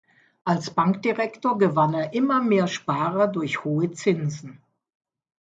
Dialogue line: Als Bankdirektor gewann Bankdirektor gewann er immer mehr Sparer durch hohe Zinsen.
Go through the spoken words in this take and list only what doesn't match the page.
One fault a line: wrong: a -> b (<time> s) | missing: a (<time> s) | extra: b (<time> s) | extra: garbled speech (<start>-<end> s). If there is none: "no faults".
missing: Bankdirektor gewann (1.9 s)